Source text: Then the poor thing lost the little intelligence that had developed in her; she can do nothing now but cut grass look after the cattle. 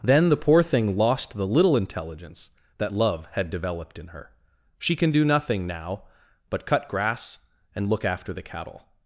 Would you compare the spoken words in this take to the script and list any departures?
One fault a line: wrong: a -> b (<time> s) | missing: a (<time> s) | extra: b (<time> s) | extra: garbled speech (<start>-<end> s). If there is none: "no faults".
extra: love (2.9 s)
extra: and (7.7 s)